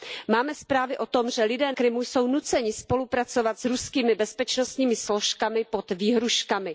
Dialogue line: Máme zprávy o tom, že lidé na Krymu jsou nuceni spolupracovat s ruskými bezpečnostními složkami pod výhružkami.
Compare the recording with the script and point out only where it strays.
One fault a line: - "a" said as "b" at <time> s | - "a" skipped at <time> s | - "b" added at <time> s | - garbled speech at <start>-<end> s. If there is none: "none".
- "na" skipped at 1.7 s